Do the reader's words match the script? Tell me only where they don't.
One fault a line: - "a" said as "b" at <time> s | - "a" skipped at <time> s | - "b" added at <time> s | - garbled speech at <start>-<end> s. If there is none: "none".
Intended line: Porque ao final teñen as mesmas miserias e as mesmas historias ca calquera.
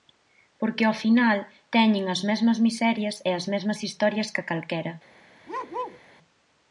none